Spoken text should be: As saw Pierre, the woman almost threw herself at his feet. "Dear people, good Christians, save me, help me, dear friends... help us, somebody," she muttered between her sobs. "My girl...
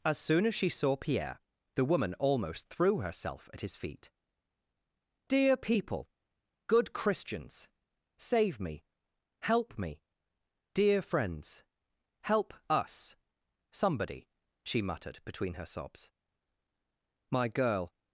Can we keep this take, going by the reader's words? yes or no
no